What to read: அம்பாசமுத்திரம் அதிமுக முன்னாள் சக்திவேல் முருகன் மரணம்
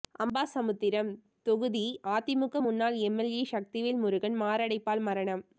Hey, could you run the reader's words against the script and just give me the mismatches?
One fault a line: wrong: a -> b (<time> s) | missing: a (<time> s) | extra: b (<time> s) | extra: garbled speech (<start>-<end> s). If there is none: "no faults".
extra: தொகுதி (1.4 s)
extra: எம்எல்ஏ (3.1 s)
extra: மாரடைப்பால் (4.4 s)